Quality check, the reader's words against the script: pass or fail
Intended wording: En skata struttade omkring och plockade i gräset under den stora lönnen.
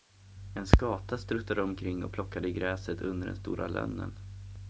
pass